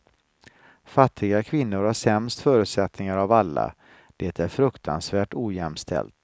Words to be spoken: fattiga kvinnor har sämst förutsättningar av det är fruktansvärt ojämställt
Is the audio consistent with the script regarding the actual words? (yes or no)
no